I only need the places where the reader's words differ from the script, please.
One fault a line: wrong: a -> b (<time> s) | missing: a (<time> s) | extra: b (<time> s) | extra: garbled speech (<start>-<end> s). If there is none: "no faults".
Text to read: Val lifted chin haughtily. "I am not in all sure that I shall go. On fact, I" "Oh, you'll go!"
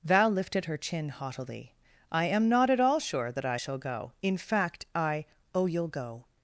extra: her (0.7 s)
wrong: in -> at (2.7 s)
wrong: On -> In (4.2 s)